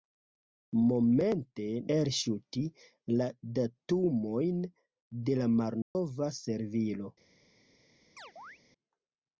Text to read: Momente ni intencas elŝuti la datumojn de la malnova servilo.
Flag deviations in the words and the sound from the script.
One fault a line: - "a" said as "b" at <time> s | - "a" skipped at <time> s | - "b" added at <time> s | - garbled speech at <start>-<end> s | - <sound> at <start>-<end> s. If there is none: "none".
- "ni intencas" skipped at 1.6 s
- dropout at 5.8-6.0 s
- chirp at 8.2-8.6 s